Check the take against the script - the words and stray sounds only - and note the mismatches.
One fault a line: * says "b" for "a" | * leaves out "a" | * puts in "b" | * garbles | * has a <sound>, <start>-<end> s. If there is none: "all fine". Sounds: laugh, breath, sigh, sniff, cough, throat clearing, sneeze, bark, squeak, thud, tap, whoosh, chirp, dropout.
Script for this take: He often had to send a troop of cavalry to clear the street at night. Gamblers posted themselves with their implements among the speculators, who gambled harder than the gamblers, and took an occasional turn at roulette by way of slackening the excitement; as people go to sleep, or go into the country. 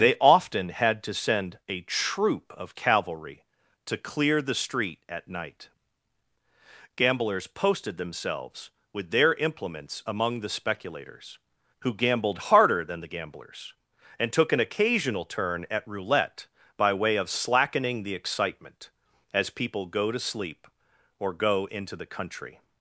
* says "They" for "He"